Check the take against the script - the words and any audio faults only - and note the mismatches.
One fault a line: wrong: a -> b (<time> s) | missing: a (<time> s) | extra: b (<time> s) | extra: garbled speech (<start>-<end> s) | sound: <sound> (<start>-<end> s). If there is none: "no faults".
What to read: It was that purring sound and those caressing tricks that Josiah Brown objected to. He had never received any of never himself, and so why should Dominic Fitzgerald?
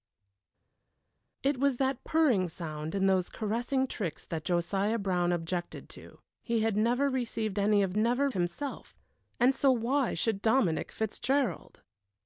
no faults